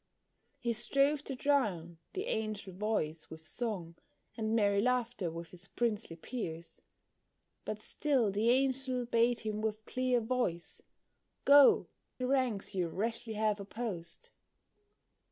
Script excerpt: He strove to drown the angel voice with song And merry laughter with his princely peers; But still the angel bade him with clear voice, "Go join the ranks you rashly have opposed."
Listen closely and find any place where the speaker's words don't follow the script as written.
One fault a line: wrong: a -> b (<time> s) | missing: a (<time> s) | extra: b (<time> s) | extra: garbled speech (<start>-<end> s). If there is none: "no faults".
missing: join (11.8 s)